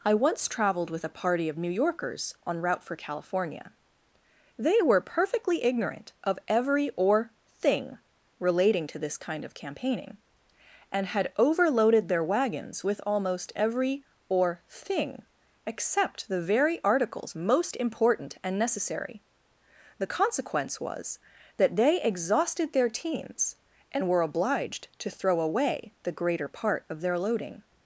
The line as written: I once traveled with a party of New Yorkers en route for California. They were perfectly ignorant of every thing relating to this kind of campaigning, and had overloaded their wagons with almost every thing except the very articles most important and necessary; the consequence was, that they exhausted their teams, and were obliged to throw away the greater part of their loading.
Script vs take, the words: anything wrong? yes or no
yes